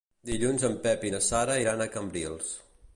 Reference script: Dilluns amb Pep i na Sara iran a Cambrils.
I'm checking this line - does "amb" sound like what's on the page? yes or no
no